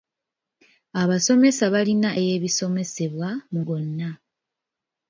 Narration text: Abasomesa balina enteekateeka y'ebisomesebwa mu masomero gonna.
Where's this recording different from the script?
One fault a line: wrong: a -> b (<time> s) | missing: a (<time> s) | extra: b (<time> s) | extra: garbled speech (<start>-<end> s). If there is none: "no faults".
missing: enteekateeka (2.1 s)
missing: masomero (3.6 s)